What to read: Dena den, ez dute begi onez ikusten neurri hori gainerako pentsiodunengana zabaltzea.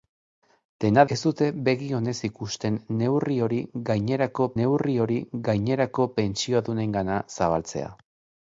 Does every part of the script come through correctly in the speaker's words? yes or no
no